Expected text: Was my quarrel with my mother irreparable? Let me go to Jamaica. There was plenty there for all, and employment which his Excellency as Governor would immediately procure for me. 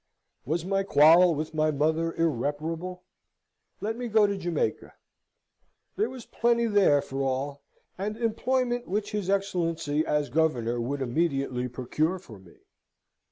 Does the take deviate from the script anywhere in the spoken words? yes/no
no